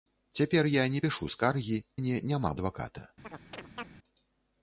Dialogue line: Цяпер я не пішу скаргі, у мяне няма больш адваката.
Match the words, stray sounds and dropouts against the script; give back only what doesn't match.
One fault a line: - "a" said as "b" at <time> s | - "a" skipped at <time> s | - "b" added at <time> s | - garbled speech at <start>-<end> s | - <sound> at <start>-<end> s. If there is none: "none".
- "у" skipped at 1.8 s
- "больш" skipped at 2.6 s
- chirp at 3.2-3.9 s